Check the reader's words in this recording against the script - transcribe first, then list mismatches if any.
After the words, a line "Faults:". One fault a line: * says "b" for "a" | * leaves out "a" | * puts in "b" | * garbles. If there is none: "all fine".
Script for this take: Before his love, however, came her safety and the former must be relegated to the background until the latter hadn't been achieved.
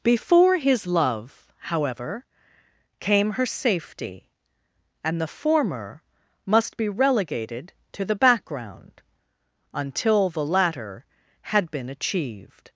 Before his love, however, came her safety and the former must be relegated to the background until the latter had been achieved.
Faults:
* says "had" for "hadn't"